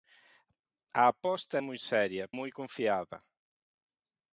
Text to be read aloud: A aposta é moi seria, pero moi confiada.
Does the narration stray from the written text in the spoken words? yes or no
yes